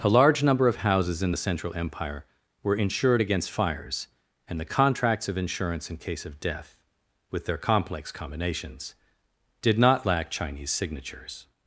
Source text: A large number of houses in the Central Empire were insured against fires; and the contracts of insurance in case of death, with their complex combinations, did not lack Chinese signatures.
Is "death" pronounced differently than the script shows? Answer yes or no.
no